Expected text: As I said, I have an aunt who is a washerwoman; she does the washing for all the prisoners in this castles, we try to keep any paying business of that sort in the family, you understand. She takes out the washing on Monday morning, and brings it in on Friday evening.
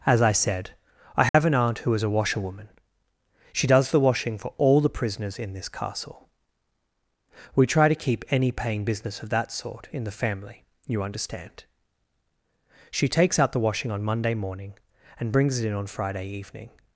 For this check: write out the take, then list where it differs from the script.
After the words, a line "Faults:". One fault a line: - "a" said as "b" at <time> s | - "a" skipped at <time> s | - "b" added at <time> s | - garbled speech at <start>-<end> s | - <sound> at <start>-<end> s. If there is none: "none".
As I said, I have an aunt who is a washerwoman; she does the washing for all the prisoners in this castle, we try to keep any paying business of that sort in the family, you understand. She takes out the washing on Monday morning, and brings it in on Friday evening.
Faults:
- dropout at 1.3-1.3 s
- "castles" said as "castle" at 5.7 s